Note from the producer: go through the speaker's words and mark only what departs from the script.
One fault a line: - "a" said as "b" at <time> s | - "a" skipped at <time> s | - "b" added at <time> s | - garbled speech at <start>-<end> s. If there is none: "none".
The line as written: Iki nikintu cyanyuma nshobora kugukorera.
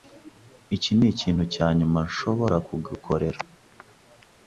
none